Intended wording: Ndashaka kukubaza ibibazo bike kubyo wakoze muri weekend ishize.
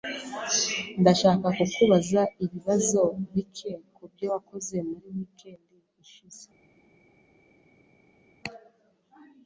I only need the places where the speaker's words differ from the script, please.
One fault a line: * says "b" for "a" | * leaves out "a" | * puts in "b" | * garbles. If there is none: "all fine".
all fine